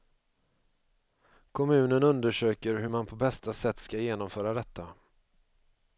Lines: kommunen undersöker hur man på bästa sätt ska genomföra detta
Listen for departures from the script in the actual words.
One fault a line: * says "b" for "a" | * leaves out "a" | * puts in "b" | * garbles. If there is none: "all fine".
all fine